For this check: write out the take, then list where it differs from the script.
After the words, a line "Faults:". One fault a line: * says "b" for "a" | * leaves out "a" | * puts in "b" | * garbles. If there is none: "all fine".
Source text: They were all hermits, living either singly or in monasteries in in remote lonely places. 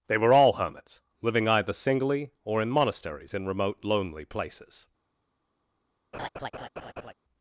They were all hermits, living either singly or in monasteries in remote lonely places.
Faults:
* leaves out "in"